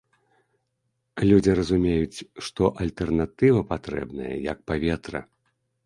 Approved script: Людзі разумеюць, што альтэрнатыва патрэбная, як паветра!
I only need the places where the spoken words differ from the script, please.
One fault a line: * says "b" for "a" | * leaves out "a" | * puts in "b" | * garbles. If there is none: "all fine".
all fine